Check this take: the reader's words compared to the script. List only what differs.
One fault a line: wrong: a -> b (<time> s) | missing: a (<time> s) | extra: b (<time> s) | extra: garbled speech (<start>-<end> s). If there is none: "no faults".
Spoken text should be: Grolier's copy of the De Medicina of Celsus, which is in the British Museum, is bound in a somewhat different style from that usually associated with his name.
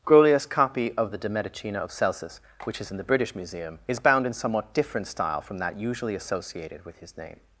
missing: a (4.3 s)